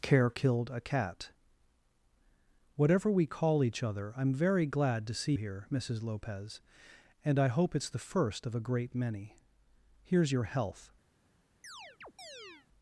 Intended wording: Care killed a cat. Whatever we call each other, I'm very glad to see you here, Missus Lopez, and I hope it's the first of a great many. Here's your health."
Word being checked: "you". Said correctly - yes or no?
no